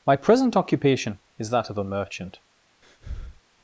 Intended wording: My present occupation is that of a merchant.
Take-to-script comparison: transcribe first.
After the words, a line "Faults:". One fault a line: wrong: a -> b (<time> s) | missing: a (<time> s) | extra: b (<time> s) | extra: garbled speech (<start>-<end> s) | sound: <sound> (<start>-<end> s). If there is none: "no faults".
My present occupation is that of a merchant.
Faults:
sound: breath (2.8-3.4 s)